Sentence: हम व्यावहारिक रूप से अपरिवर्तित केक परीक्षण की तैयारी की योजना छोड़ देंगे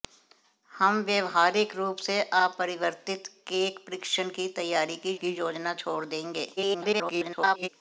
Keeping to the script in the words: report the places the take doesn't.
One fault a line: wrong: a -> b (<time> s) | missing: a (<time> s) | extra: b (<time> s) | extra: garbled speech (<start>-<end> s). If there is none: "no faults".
extra: की (5.1 s)
extra: garbled speech (6.6-7.7 s)